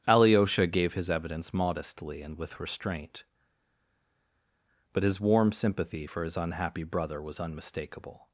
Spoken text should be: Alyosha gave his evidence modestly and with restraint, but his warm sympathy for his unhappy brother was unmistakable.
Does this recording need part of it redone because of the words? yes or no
no